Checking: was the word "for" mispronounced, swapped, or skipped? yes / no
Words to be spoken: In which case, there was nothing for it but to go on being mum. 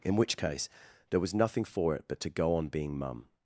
no